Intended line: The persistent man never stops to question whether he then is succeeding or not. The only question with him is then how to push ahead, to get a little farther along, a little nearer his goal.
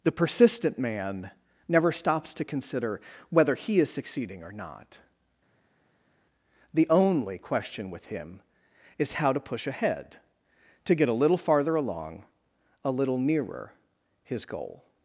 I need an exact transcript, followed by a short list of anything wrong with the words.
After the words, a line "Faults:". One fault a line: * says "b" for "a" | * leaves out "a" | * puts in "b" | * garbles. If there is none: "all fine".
The persistent man never stops to consider whether he is succeeding or not. The only question with him is how to push ahead, to get a little farther along, a little nearer his goal.
Faults:
* says "consider" for "question"
* leaves out "then"
* leaves out "then"